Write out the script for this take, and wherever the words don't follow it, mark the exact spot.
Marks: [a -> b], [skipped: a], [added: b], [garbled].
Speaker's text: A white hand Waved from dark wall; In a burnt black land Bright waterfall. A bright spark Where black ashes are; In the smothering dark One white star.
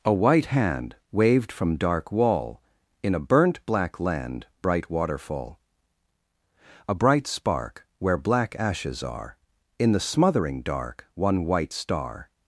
A white hand Waved from dark wall; In a burnt black land Bright waterfall. A bright spark Where black ashes are; In the smothering dark One white star.